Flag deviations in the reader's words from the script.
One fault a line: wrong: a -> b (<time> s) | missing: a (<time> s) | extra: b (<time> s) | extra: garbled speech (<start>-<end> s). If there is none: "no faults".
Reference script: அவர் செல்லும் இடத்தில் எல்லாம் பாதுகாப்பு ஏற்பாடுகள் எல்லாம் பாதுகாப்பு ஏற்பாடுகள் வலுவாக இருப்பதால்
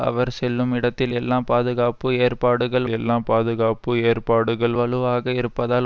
no faults